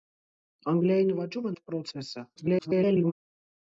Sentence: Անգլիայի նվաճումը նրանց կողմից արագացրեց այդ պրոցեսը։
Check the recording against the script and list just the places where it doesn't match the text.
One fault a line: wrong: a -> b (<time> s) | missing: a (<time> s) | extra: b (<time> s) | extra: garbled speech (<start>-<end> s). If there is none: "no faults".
missing: նրանց կողմից արագացրեց (1.5 s)
extra: garbled speech (2.4-3.1 s)